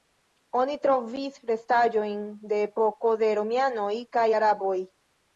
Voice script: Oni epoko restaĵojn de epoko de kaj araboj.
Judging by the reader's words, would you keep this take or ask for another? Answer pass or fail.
fail